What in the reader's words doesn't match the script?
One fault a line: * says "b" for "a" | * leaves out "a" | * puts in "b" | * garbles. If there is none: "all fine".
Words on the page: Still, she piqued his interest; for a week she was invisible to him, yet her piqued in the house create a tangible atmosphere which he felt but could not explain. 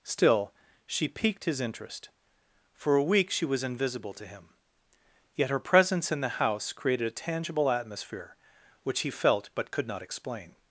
* says "presence" for "piqued"
* says "created" for "create"